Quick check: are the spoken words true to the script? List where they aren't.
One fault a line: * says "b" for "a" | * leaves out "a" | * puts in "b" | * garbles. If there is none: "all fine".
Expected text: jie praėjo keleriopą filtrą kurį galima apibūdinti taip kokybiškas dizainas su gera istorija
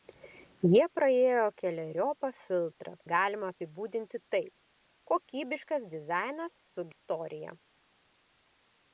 * leaves out "kurį"
* leaves out "gera"